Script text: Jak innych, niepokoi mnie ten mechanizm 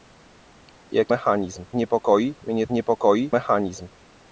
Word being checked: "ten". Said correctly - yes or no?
no